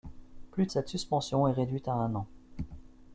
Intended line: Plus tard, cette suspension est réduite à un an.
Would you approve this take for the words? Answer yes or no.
no